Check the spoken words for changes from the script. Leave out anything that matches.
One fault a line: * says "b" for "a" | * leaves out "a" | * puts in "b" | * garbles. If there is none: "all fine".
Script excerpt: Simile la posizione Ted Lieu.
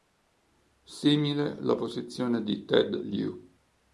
* puts in "di"